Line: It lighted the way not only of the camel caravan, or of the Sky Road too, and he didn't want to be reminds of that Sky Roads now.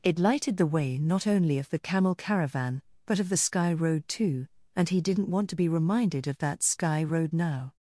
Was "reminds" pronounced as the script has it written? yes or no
no